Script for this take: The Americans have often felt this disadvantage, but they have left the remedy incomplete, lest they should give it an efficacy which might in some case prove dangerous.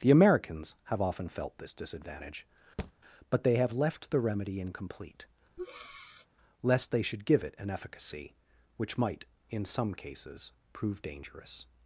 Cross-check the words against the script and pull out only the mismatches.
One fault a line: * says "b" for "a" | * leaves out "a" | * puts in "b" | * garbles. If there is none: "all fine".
* says "cases" for "case"